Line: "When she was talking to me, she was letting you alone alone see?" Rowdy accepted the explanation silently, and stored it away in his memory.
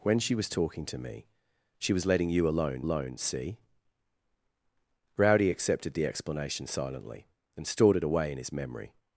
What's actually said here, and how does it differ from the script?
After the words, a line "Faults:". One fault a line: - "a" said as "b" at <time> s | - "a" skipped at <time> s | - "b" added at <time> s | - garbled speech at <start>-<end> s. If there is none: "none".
"When she was talking to me, she was letting you alone alone see?" Rowdy accepted the explanation silently, and stored it away in his memory.
Faults:
none